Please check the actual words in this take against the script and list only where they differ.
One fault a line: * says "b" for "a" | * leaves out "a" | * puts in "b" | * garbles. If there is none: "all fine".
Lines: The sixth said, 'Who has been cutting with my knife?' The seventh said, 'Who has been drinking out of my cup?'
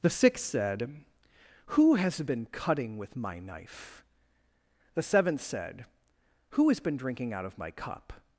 all fine